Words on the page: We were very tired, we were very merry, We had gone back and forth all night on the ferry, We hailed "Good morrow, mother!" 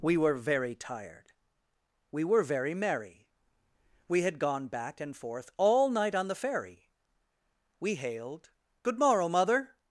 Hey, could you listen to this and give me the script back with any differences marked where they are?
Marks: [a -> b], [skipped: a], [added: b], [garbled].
We were very tired, we were very merry, We had gone back and forth all night on the ferry, We hailed "Good morrow, mother!"